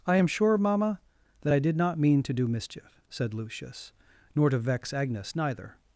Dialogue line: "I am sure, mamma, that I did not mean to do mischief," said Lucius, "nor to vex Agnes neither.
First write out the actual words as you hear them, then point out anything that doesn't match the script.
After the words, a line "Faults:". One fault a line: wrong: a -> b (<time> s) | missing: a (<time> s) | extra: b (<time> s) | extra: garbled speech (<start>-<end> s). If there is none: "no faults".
"I am sure, mamma, that I did not mean to do mischief," said Lucius, "nor to vex Agnes neither.
Faults:
no faults